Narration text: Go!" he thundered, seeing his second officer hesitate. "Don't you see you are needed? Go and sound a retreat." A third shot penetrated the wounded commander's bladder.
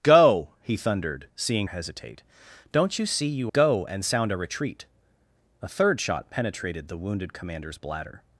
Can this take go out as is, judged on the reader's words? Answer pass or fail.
fail